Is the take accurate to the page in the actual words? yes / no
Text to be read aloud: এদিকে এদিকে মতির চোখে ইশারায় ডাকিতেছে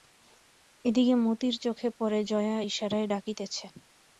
no